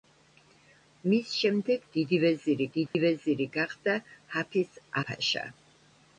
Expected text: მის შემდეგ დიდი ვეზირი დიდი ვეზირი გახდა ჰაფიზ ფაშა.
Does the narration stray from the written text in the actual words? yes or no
no